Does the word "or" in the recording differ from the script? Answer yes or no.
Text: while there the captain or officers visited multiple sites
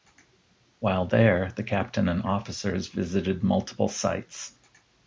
yes